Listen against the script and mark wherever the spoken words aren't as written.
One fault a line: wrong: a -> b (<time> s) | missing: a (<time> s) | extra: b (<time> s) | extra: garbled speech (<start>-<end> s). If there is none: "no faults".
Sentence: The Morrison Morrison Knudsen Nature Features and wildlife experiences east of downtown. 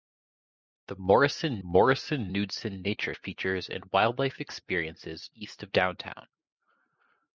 no faults